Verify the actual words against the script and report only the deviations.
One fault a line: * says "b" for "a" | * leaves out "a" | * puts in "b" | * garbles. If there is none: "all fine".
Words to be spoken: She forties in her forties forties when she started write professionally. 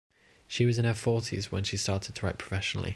* says "was" for "forties"
* leaves out "forties"
* puts in "to"